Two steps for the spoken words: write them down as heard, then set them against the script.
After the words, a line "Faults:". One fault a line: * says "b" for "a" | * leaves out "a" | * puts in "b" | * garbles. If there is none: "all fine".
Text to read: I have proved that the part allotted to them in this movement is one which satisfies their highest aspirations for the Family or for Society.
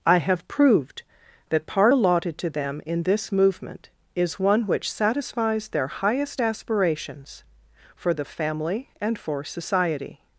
I have proved that part allotted to them in this movement is one which satisfies their highest aspirations for the Family and for Society.
Faults:
* leaves out "the"
* says "and" for "or"